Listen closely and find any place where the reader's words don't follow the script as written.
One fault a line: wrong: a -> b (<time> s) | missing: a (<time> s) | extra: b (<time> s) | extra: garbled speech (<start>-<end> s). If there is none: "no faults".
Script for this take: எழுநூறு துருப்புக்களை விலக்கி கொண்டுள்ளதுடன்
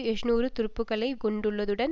missing: விலக்கி (1.1 s)